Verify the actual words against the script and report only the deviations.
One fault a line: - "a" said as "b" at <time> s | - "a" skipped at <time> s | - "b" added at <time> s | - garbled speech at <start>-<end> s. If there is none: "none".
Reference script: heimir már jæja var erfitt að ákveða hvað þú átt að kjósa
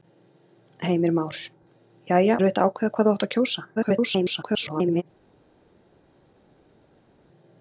- "var" skipped at 2.4 s
- garbled speech at 3.7-5.0 s